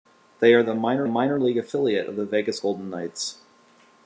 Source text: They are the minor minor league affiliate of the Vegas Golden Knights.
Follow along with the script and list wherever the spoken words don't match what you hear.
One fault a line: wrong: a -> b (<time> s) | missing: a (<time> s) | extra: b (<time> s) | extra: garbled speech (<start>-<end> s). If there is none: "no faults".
no faults